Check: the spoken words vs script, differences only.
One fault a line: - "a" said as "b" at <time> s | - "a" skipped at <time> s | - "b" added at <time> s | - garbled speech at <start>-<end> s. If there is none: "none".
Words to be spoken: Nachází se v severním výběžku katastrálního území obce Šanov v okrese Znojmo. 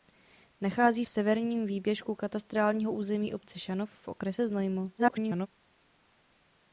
- "se" skipped at 1.1 s
- garbled speech at 5.0-5.5 s